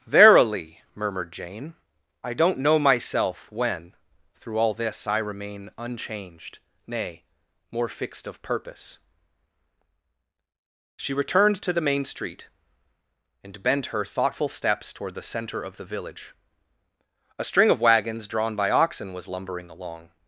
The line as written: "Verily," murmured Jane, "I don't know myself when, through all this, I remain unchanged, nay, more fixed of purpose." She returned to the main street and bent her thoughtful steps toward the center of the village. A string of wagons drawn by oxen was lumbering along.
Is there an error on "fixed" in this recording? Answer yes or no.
no